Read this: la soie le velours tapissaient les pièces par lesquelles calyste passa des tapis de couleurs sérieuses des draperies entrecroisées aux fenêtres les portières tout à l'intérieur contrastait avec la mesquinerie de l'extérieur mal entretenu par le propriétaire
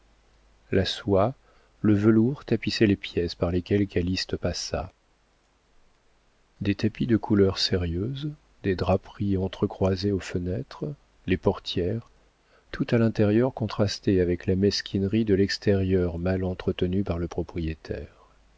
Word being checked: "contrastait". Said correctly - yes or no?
yes